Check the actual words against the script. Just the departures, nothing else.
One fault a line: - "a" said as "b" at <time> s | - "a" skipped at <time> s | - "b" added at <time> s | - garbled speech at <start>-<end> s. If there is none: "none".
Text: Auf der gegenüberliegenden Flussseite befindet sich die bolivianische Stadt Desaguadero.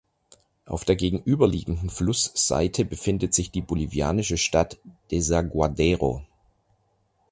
none